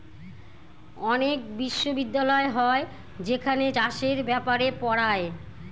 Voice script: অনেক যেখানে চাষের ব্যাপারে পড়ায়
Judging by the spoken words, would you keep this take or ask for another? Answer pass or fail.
fail